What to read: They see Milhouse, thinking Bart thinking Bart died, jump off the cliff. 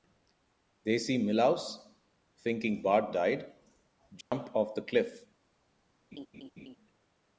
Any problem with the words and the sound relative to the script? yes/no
yes